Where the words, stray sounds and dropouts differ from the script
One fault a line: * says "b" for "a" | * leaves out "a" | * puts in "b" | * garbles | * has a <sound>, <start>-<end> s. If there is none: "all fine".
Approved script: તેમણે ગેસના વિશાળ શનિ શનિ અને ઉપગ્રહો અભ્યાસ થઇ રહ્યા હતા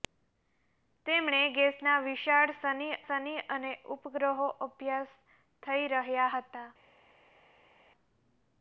all fine